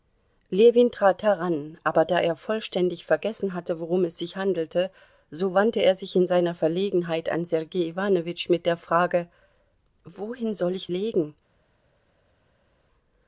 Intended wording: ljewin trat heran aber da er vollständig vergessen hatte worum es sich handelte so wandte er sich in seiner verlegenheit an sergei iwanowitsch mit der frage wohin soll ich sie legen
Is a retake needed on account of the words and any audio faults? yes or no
yes